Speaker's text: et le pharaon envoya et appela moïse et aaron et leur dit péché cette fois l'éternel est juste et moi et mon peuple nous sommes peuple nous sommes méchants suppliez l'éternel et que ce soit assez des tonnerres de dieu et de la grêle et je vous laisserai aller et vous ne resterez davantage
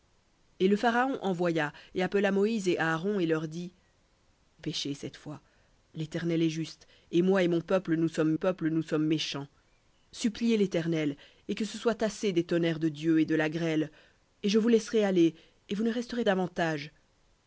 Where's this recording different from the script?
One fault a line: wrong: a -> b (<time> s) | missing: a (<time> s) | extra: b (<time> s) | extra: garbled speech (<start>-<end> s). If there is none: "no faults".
no faults